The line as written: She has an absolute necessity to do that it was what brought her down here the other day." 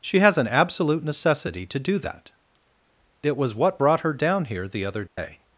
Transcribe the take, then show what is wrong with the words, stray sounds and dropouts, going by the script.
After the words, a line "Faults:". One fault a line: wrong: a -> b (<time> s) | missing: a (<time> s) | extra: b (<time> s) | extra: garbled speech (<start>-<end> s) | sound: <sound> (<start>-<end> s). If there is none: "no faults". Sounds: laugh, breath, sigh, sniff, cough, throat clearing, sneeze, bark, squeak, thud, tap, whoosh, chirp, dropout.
She has an absolute necessity to do that it was what brought her down here the other day."
Faults:
sound: dropout (5.1-5.2 s)